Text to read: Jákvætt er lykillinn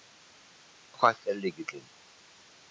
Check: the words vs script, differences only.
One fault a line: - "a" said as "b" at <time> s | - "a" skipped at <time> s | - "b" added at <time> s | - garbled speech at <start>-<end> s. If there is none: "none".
none